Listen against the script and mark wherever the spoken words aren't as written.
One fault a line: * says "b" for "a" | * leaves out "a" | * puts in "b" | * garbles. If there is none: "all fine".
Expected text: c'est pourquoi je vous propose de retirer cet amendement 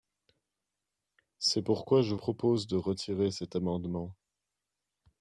* leaves out "vous"